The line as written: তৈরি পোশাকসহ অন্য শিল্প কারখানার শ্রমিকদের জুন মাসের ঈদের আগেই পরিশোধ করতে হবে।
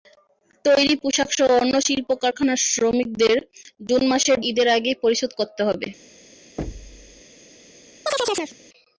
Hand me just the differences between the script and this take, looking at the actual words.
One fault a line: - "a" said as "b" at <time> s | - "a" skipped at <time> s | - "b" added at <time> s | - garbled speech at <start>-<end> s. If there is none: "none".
none